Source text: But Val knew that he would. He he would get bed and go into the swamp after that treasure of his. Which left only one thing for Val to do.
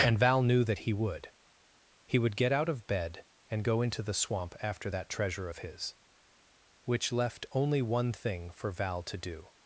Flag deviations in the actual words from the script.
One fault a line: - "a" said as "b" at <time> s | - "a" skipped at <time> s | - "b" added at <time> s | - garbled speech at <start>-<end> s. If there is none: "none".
- "But" said as "And" at 0.0 s
- "he" skipped at 2.2 s
- "out of" added at 2.5 s